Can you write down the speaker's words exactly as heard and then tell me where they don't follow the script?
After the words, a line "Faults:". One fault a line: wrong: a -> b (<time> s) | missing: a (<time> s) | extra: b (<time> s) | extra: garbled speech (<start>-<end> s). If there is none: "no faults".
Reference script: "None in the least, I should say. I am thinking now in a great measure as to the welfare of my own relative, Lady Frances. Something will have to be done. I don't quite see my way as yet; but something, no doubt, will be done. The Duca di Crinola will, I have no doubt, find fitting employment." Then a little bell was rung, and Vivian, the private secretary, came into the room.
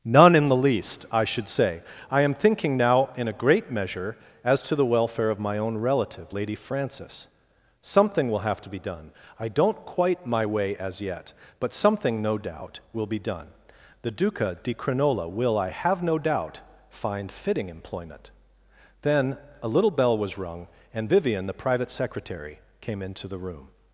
"None in the least, I should say. I am thinking now in a great measure as to the welfare of my own relative, Lady Frances. Something will have to be done. I don't quite my way as yet; but something, no doubt, will be done. The Duca di Crinola will, I have no doubt, find fitting employment." Then a little bell was rung, and Vivian, the private secretary, came into the room.
Faults:
missing: see (10.2 s)